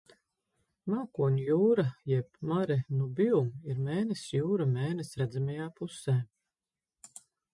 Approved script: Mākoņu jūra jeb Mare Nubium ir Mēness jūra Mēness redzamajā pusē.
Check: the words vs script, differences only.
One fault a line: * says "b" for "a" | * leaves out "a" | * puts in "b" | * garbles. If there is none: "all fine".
all fine